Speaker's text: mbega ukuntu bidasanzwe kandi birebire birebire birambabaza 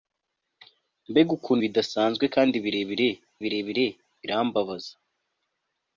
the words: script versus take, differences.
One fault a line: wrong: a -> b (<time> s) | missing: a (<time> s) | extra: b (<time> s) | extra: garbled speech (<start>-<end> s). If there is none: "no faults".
no faults